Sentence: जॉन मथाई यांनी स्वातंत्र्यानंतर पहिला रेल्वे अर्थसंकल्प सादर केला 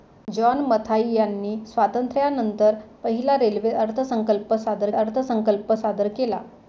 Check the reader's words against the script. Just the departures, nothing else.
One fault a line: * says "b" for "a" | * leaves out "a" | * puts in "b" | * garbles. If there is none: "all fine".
* puts in "अर्थसंकल्प सादर"